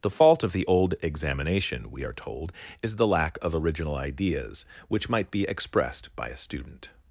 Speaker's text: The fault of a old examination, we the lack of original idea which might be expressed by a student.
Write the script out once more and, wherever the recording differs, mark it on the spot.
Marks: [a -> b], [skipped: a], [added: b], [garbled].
The fault of [a -> the] old examination, we [added: are told is] the lack of original [idea -> ideas] which might be expressed by a student.